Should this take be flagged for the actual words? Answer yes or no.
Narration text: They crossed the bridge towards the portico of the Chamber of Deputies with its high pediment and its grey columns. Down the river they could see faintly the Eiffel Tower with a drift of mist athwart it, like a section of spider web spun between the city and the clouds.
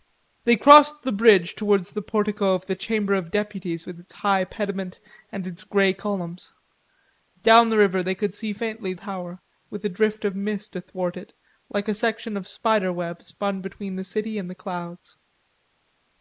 yes